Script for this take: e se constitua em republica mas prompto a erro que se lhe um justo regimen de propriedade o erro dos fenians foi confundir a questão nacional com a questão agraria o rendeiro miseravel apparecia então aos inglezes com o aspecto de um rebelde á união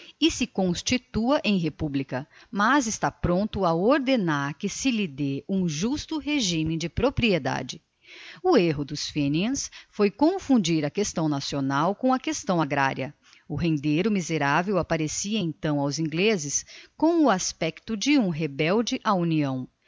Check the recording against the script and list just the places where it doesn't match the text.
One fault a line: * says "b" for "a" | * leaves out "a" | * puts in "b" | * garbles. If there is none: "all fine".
* puts in "está"
* says "ordenar" for "erro"
* puts in "dê"